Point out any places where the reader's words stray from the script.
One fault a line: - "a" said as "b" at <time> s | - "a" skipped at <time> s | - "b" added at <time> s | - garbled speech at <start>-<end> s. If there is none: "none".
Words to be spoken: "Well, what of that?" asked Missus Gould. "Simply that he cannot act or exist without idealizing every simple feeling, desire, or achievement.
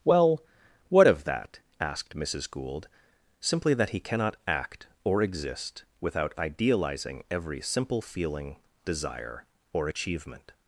none